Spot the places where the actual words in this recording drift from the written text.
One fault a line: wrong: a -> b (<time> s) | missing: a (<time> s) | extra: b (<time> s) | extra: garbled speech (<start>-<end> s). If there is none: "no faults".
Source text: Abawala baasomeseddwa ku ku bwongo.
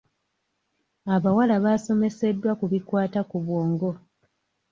extra: bikwata (2.7 s)